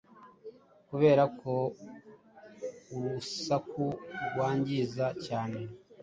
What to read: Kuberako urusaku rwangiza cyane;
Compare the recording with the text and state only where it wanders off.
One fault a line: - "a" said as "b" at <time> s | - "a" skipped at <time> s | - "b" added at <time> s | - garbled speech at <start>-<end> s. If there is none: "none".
none